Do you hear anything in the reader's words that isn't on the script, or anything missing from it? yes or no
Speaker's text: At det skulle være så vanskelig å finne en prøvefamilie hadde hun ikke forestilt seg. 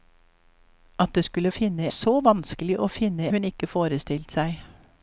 yes